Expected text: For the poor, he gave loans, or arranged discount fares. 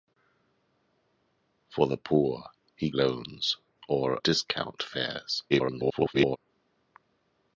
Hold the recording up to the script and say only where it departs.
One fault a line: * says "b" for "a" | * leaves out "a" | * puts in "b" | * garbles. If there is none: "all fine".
* leaves out "gave"
* leaves out "arranged"
* garbles